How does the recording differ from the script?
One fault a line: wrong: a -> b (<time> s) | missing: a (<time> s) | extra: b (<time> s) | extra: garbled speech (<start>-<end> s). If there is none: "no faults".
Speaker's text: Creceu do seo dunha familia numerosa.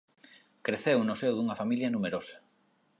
wrong: do -> no (1.0 s)